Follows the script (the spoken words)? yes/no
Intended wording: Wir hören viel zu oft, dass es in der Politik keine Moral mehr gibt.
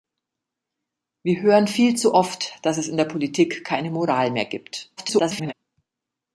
no